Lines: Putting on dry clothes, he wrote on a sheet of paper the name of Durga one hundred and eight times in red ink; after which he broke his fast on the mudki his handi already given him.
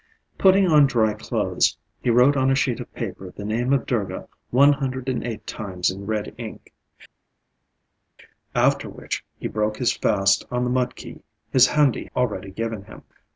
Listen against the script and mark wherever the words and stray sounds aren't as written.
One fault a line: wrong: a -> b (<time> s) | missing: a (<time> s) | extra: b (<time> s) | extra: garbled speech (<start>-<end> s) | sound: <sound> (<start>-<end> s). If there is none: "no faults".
no faults